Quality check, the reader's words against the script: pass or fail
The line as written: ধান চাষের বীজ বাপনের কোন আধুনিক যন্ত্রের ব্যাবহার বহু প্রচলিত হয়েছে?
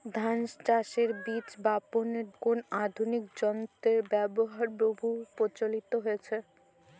pass